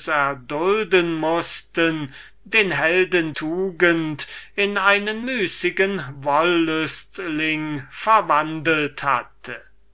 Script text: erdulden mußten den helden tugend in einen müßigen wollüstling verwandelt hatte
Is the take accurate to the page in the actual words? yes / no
yes